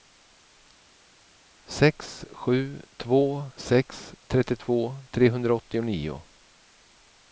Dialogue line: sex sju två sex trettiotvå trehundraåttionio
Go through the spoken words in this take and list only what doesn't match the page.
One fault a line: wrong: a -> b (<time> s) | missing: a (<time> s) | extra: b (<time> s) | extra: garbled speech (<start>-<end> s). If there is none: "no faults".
no faults